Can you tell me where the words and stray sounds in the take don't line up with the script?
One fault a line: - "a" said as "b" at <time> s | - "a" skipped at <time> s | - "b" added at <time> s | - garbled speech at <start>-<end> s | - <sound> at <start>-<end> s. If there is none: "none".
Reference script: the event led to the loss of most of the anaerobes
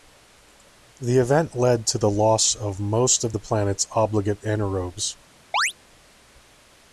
- "planet's obligate" added at 3.4 s
- chirp at 5.5-5.7 s